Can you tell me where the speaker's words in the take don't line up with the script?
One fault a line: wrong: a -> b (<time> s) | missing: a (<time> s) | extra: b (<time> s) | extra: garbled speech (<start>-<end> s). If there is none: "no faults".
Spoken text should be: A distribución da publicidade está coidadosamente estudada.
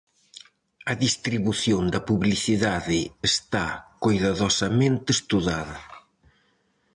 no faults